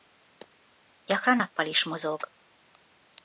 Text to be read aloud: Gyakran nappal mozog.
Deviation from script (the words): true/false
true